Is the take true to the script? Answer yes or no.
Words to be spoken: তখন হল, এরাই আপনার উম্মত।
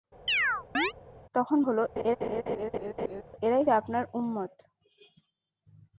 yes